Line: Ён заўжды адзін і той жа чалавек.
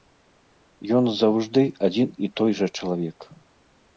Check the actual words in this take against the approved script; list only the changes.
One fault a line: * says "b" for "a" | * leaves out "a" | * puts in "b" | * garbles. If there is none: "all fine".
all fine